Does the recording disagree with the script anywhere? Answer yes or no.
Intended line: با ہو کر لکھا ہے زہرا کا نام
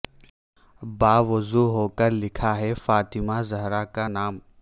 yes